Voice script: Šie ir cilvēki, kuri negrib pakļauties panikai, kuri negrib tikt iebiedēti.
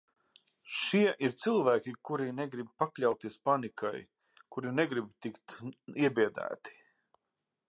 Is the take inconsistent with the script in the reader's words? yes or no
no